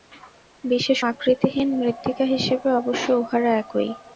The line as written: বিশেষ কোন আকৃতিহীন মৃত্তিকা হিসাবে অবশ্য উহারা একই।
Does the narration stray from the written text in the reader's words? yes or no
yes